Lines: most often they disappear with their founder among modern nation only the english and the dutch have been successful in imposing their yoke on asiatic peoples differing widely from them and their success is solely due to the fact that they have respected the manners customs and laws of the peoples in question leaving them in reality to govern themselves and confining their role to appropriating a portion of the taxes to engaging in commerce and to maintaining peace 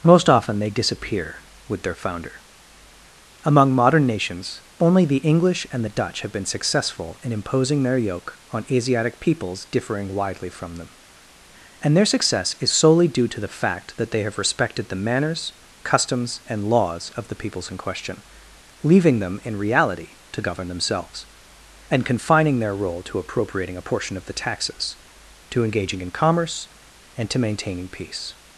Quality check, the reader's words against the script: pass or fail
fail